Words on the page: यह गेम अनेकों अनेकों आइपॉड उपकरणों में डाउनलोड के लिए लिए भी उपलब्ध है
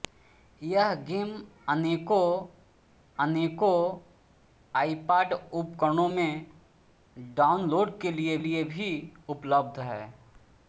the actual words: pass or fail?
pass